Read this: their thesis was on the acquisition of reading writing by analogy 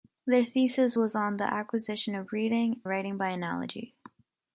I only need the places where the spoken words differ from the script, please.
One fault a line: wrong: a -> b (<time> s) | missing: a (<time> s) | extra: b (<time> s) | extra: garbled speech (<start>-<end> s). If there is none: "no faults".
no faults